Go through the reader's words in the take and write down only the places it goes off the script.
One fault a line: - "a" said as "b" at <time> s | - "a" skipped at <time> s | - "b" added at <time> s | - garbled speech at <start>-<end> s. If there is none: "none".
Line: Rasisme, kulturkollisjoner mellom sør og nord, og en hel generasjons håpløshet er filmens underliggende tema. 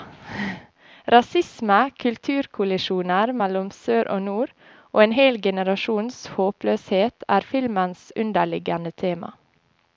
none